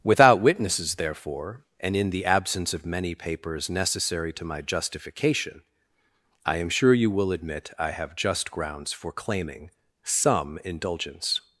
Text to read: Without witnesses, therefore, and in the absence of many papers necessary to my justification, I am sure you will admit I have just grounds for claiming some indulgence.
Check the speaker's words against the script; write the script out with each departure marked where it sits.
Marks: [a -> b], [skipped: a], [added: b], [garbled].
Without witnesses, therefore, and in the absence of many papers necessary to my justification, I am sure you will admit I have just grounds for claiming some indulgence.